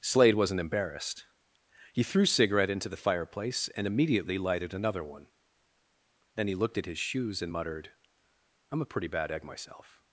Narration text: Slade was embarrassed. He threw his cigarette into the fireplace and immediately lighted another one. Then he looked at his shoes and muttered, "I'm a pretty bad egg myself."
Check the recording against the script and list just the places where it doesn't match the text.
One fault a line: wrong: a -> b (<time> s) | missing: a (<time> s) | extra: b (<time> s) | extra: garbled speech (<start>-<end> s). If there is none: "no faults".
wrong: was -> wasn't (0.3 s)
missing: his (2.2 s)